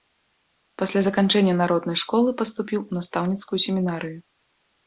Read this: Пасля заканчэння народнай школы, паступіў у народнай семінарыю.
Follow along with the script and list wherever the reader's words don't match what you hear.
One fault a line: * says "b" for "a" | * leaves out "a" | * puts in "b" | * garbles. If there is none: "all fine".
* says "настаўніцкую" for "народнай"